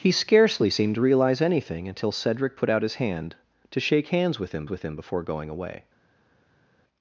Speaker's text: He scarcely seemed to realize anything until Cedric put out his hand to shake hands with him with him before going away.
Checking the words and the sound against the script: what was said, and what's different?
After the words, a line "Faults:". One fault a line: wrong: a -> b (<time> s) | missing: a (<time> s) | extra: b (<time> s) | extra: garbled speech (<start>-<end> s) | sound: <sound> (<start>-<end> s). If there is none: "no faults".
He scarcely seemed to realize anything until Cedric put out his hand to shake hands with him with him before going away.
Faults:
no faults